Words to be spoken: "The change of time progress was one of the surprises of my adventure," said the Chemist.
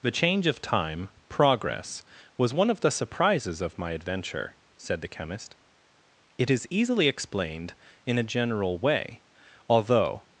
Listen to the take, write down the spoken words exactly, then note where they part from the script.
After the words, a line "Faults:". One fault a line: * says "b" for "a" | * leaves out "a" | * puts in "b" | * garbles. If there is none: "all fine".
"The change of time progress was one of the surprises of my adventure," said the Chemist. "It is easily explained in a general way, although
Faults:
* puts in "It is easily explained in a general way although"